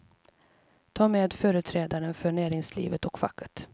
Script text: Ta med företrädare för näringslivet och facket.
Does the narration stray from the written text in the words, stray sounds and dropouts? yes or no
no